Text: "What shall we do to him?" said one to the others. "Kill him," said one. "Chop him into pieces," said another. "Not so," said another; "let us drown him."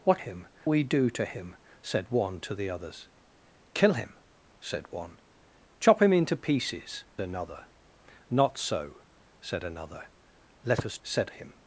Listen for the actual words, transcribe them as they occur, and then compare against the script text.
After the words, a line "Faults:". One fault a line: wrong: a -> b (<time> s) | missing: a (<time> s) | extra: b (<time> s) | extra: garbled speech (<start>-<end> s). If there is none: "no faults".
"What him we do to him?" said one to the others. "Kill him," said one. "Chop him into pieces," another. "Not so," said another; "let us said him."
Faults:
wrong: shall -> him (0.2 s)
missing: said (7.0 s)
wrong: drown -> said (11.0 s)